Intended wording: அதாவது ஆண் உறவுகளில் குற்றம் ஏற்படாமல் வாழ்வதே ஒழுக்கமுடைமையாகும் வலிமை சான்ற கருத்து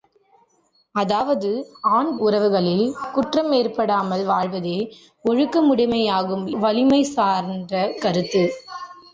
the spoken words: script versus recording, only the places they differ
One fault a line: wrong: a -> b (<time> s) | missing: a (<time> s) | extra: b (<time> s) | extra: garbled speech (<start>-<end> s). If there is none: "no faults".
no faults